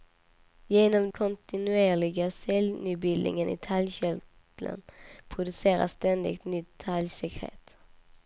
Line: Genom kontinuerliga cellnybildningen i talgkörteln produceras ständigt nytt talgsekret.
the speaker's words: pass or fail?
pass